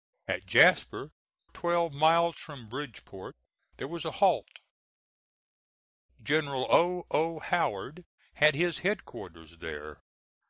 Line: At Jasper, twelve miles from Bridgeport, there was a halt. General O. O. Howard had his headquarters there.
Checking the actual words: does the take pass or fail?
pass